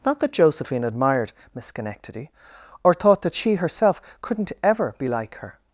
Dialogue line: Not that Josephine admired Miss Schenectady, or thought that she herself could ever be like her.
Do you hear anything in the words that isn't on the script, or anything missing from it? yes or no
yes